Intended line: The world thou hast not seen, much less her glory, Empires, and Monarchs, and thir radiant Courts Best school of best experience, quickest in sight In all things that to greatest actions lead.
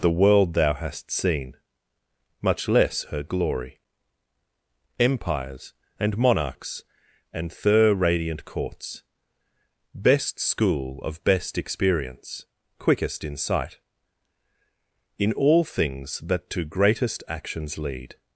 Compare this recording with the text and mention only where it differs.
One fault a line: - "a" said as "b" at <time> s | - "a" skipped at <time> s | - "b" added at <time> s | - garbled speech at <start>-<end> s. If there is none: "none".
- "not" skipped at 1.1 s